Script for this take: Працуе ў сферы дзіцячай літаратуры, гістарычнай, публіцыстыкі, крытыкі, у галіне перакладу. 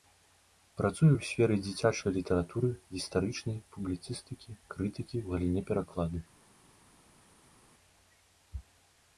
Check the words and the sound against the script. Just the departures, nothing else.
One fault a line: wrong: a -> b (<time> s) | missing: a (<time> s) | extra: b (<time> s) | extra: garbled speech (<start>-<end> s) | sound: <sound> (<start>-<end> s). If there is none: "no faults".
no faults